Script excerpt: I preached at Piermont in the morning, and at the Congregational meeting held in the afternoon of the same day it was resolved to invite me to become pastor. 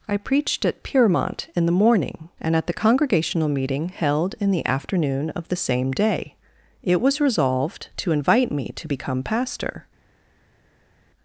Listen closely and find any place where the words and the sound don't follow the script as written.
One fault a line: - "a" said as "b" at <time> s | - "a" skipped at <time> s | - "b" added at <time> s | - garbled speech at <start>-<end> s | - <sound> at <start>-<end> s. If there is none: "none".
none